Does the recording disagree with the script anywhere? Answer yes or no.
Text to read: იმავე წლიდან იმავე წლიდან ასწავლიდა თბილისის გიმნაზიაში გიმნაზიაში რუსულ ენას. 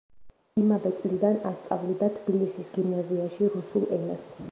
yes